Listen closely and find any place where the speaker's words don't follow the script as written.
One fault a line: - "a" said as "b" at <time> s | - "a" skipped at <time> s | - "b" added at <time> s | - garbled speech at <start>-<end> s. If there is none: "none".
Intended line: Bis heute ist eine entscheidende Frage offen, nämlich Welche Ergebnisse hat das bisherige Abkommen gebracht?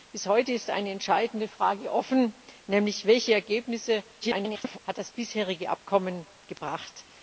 - garbled speech at 4.2-4.8 s